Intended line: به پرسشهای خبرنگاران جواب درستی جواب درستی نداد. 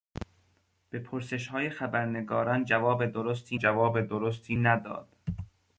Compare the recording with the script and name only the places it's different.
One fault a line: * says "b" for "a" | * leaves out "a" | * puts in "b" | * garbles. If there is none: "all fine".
all fine